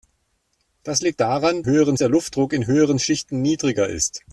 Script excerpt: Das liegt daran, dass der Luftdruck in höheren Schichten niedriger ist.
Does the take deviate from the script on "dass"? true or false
true